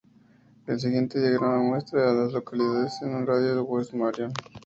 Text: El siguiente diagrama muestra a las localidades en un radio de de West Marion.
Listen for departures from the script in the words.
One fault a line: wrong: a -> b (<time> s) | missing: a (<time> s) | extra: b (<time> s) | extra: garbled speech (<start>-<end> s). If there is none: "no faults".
no faults